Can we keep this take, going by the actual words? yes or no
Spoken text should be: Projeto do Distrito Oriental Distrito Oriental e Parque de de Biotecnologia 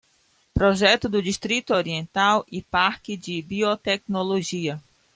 no